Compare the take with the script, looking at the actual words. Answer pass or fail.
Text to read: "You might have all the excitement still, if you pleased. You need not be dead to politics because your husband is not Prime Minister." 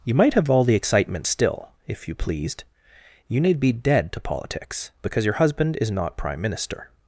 fail